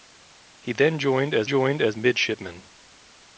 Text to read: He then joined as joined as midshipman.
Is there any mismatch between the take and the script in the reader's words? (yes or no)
no